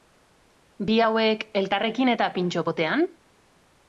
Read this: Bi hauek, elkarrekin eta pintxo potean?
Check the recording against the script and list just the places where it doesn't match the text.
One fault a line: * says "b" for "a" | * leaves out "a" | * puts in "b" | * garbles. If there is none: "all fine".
all fine